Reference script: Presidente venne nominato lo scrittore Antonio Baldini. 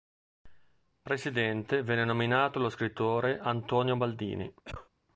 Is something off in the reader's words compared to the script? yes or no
no